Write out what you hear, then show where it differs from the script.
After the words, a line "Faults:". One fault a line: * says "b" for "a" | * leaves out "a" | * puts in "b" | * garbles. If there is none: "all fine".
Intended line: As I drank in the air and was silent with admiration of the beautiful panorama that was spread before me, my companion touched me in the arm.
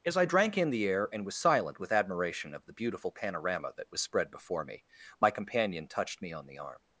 As I drank in the air and was silent with admiration of the beautiful panorama that was spread before me, my companion touched me on the arm.
Faults:
* says "on" for "in"